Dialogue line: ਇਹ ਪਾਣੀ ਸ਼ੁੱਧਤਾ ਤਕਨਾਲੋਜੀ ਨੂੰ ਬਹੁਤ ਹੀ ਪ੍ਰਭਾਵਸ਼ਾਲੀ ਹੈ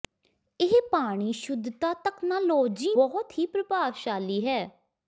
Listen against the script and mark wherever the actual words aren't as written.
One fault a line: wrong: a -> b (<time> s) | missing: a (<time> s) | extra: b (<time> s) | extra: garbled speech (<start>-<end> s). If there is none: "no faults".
missing: ਨੂੰ (2.9 s)